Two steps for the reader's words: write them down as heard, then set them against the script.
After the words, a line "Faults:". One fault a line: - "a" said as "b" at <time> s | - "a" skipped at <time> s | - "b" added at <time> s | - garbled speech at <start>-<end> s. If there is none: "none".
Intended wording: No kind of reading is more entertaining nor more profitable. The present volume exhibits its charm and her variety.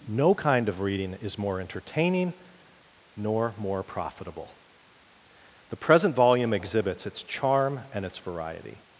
No kind of reading is more entertaining nor more profitable. The present volume exhibits its charm and its variety.
Faults:
- "her" said as "its" at 8.0 s